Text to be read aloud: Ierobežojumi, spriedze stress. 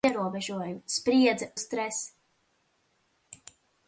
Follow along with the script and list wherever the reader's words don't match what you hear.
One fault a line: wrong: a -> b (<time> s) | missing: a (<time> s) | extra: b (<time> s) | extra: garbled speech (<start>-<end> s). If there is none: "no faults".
no faults